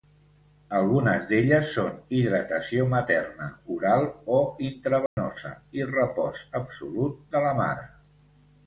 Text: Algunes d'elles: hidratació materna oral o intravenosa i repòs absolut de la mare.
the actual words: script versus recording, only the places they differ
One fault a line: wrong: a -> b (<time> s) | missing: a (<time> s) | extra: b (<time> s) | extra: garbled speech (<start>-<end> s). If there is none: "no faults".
extra: són (1.8 s)